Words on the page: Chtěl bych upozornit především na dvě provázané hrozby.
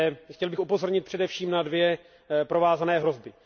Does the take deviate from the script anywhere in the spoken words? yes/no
no